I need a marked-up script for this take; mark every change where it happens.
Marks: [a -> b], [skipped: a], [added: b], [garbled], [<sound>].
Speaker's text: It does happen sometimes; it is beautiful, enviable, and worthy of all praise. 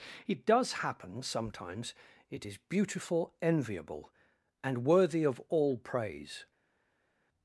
It does happen sometimes; it is beautiful, enviable, and worthy of all praise.